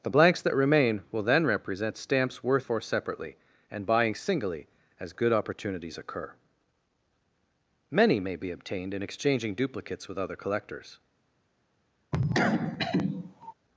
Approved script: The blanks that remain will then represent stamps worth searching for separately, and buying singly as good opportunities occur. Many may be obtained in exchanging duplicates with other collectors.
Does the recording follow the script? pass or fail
fail